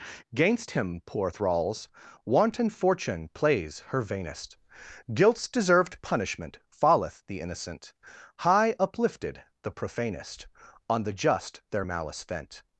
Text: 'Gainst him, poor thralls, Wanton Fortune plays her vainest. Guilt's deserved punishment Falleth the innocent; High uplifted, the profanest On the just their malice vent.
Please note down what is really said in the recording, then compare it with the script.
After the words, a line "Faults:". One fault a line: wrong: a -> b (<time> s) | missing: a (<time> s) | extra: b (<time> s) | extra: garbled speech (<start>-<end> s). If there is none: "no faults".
'Gainst him, poor thralls, Wanton Fortune plays her vainest. Guilt's deserved punishment Falleth the innocent; High uplifted, the profanest On the just their malice vent.
Faults:
no faults